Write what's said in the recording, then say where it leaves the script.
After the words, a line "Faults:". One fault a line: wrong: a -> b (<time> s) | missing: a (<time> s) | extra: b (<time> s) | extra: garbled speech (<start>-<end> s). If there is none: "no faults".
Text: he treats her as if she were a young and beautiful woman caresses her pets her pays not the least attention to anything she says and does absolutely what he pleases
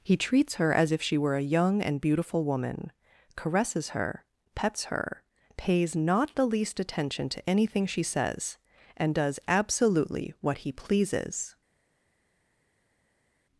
he treats her as if she were a young and beautiful woman caresses her pets her pays not the least attention to anything she says and does absolutely what he pleases
Faults:
no faults